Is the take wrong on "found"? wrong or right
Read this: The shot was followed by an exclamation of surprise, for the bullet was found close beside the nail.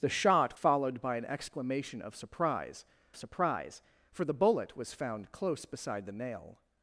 right